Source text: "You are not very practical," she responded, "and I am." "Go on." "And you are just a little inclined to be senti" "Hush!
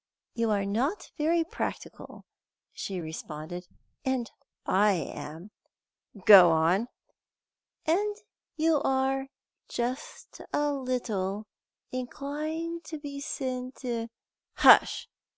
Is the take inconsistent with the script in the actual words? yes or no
no